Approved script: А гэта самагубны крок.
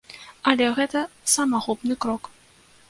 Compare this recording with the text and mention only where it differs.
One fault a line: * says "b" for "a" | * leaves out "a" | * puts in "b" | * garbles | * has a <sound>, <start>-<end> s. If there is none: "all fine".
* says "Але" for "А"